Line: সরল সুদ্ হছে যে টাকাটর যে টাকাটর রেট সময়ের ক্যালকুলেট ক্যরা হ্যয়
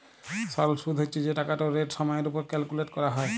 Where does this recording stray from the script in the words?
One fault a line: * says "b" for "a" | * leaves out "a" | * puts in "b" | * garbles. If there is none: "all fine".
* leaves out "যে টাকাটর"
* puts in "উপর"